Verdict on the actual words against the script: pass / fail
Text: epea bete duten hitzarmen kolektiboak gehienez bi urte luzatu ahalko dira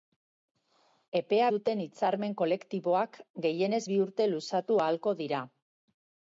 fail